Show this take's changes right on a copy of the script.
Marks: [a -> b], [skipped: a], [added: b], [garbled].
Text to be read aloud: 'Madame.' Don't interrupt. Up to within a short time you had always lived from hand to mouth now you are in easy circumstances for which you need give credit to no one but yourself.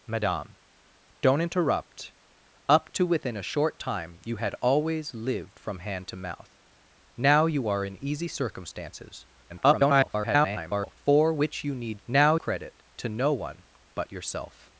'Madame.' Don't interrupt. Up to within a short time you had always lived from hand to mouth now you are in easy circumstances [garbled] for which you need [give -> now] credit to no one but yourself.